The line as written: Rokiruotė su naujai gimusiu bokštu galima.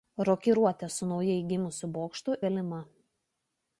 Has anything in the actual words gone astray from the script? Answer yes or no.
no